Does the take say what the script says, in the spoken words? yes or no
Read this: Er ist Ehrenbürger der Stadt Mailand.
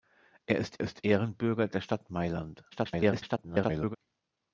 no